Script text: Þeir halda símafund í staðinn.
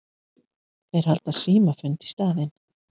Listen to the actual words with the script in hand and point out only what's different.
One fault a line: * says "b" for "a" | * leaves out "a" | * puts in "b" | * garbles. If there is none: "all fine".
all fine